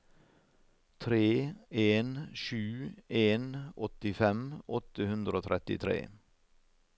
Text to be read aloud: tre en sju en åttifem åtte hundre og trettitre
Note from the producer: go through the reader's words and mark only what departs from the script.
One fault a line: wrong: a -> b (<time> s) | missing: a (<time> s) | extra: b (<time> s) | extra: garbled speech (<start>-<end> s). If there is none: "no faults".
no faults